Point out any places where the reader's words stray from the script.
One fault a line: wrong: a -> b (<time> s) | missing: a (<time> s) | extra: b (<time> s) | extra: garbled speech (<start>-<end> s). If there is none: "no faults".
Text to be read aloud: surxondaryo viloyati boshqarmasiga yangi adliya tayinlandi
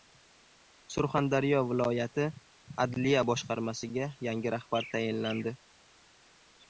extra: adliya (2.9 s)
wrong: adliya -> rahbar (4.6 s)